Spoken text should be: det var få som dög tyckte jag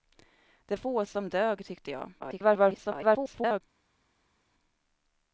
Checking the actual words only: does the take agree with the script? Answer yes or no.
no